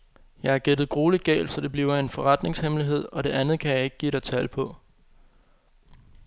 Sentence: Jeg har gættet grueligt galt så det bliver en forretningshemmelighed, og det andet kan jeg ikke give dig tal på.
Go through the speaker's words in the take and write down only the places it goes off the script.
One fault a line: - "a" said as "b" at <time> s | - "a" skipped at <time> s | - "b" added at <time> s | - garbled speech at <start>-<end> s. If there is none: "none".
none